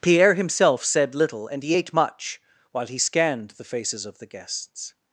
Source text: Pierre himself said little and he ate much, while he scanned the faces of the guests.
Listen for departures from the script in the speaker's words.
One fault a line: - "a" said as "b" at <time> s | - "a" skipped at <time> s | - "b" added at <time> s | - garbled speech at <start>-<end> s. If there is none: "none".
none